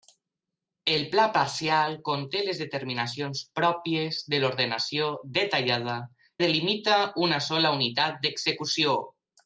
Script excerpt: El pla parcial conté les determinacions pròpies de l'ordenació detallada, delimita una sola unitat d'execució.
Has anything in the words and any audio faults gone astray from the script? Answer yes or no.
no